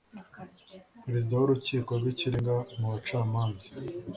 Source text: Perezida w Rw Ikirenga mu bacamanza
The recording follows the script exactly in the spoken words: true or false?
false